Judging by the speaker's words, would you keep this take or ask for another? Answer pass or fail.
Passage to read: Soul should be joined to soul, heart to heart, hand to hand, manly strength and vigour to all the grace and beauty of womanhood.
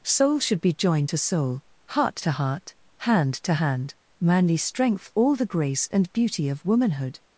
fail